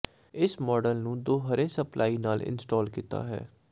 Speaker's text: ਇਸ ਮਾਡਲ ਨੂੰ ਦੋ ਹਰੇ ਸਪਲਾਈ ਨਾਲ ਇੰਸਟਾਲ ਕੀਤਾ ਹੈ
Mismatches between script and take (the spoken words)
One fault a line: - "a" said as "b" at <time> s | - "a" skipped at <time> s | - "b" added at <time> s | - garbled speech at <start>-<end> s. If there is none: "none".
none